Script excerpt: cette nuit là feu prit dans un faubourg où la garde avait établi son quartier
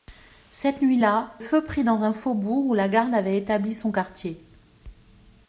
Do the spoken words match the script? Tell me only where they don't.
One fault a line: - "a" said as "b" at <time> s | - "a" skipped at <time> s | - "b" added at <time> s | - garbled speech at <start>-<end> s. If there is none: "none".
none